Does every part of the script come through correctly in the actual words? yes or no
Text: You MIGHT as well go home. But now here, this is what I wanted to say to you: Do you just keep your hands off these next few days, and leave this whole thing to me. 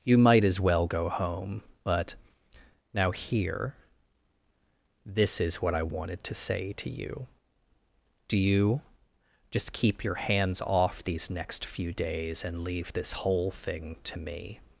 yes